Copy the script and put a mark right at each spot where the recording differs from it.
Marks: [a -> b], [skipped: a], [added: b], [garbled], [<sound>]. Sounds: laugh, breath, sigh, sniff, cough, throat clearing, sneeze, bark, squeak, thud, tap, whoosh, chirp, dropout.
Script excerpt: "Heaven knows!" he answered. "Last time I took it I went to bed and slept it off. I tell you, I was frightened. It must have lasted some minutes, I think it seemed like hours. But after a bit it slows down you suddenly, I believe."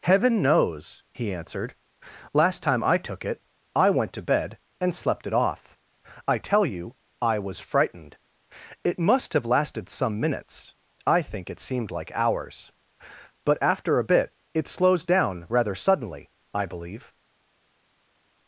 "Heaven knows!" he answered. "Last time I took it I went to bed and slept it off. I tell you, I was frightened. It must have lasted some minutes, I think it seemed like hours. But after a bit it slows down [you -> rather] suddenly, I believe."